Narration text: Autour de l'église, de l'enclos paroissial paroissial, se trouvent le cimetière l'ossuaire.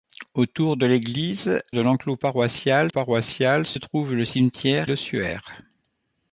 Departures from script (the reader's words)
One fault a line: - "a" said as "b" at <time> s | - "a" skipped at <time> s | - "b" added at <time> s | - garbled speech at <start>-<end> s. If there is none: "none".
none